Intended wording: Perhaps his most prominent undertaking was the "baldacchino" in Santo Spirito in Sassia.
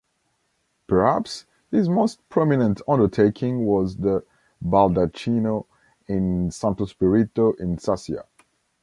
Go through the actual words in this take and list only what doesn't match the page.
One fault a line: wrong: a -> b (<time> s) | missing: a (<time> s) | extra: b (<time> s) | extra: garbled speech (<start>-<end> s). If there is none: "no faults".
no faults